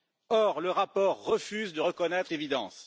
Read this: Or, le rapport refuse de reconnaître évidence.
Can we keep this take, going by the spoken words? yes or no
yes